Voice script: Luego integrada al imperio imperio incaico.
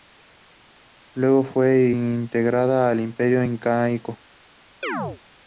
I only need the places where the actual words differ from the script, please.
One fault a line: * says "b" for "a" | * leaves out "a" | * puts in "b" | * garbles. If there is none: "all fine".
* puts in "fue"
* leaves out "imperio"